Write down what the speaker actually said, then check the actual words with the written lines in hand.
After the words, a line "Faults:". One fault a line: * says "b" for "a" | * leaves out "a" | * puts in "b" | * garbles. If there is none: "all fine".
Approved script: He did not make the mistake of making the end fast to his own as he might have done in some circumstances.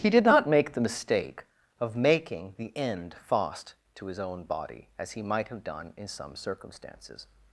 He did not make the mistake of making the end fast to his own body as he might have done in some circumstances.
Faults:
* puts in "body"